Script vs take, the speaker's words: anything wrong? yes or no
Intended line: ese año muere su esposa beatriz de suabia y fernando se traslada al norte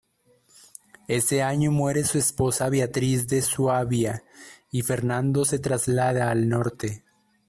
no